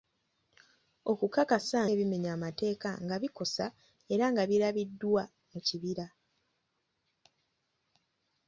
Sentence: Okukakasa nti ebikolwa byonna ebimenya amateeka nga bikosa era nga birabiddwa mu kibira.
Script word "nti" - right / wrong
wrong